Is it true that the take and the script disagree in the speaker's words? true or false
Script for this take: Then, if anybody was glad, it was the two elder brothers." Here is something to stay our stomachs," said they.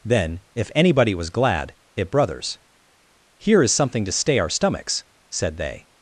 true